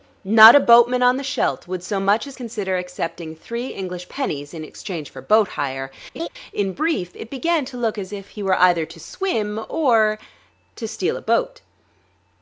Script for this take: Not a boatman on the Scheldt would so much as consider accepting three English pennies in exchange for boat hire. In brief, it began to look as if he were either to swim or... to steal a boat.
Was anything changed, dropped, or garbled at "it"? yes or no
no